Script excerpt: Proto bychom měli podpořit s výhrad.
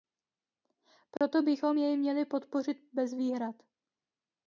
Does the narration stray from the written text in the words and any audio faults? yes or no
yes